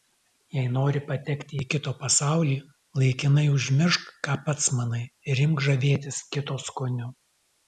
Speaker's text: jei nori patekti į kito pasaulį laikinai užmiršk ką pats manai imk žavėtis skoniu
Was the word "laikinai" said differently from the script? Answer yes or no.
no